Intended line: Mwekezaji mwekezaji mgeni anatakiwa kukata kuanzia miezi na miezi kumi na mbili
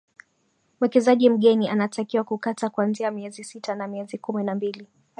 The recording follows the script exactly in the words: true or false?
false